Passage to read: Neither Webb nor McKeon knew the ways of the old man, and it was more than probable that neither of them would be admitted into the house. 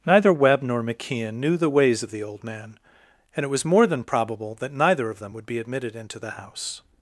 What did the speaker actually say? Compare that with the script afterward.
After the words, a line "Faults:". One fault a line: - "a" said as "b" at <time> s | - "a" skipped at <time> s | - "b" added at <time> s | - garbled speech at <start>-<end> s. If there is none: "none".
Neither Webb nor McKeon knew the ways of the old man, and it was more than probable that neither of them would be admitted into the house.
Faults:
none